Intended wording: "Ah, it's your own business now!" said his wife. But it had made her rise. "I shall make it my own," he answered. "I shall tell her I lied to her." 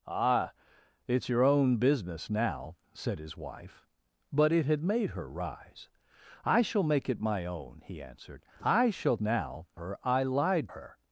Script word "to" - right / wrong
wrong